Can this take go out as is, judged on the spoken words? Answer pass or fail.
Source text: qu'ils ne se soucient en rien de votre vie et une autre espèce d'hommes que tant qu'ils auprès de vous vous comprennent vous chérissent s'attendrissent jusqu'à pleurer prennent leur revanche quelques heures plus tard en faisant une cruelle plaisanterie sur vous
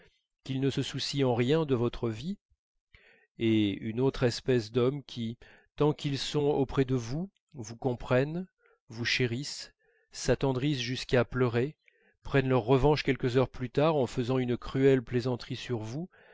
fail